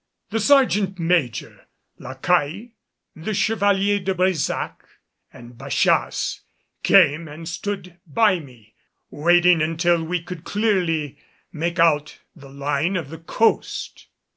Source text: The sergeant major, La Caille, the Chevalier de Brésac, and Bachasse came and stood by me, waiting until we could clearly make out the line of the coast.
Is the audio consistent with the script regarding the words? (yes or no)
yes